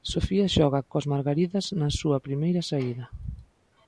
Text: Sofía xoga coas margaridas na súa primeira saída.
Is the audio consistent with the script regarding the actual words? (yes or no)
yes